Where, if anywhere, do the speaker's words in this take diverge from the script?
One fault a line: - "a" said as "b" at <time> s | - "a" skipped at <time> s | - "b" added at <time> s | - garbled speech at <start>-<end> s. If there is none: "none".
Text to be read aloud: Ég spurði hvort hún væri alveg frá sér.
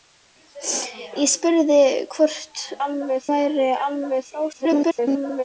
- "hún" said as "alveg" at 2.9 s
- garbled speech at 4.5-5.4 s